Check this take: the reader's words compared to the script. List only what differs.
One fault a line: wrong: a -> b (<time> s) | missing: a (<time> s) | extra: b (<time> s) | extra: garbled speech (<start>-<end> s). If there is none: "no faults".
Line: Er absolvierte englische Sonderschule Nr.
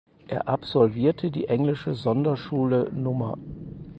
extra: die (1.3 s)